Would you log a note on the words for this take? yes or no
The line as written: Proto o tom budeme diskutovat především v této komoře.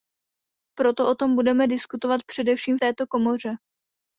no